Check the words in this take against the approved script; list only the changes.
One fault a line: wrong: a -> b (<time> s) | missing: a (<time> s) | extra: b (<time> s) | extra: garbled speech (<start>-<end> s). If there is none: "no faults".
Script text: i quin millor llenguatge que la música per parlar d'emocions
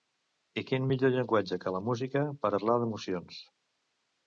no faults